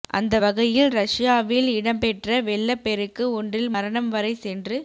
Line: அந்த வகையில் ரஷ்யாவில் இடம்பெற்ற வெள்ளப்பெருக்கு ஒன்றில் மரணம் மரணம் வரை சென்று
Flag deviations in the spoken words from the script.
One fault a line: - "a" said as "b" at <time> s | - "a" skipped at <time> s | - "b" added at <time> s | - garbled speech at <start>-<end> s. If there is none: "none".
- "மரணம்" skipped at 4.1 s